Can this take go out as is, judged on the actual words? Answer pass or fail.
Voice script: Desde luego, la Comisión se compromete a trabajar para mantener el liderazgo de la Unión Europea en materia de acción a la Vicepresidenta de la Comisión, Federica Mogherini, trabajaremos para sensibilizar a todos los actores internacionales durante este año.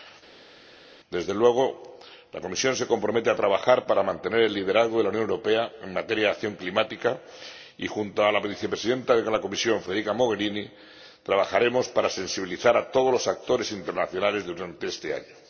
fail